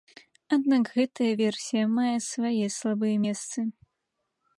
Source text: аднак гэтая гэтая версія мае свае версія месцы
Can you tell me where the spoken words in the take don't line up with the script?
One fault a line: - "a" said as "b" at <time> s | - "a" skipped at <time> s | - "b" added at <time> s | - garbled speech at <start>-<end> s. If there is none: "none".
- "гэтая" skipped at 1.3 s
- "версія" said as "слабыя" at 2.8 s